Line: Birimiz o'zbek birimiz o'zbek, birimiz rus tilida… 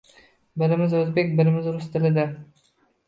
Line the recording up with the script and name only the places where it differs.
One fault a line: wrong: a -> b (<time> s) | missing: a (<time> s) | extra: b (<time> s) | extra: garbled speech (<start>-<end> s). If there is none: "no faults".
missing: o'zbek birimiz (1.7 s)